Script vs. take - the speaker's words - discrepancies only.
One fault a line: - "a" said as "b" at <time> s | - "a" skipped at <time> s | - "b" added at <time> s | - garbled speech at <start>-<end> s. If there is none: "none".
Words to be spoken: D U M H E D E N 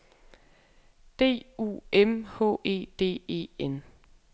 none